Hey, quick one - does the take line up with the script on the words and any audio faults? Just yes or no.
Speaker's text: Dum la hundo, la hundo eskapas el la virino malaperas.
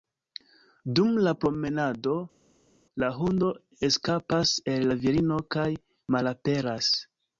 no